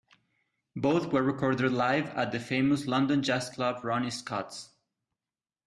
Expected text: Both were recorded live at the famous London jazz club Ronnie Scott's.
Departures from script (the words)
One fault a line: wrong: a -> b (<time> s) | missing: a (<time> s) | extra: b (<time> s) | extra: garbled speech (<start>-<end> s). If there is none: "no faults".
no faults